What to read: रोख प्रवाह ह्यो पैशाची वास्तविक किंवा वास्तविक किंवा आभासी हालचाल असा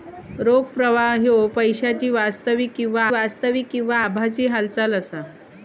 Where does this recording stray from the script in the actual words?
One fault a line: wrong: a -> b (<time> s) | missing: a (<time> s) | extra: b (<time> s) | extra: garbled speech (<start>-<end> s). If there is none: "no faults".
no faults